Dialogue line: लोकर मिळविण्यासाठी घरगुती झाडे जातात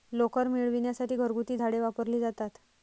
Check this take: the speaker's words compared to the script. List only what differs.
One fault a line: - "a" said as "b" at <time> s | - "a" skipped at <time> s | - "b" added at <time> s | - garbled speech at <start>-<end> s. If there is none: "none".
- "वापरली" added at 1.8 s